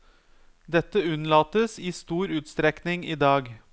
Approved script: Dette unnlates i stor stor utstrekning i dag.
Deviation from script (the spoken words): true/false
true